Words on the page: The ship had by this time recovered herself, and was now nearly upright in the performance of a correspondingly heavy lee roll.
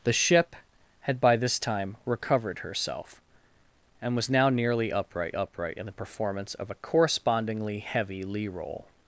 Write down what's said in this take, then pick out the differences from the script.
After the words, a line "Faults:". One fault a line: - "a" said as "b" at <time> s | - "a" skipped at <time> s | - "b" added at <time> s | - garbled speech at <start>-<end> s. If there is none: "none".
The ship had by this time recovered herself, and was now nearly upright upright in the performance of a correspondingly heavy lee roll.
Faults:
- "upright" added at 5.3 s